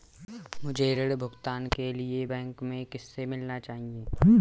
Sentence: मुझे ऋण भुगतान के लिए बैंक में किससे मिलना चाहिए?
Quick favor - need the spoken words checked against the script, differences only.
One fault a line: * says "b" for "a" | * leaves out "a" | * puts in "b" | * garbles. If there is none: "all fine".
all fine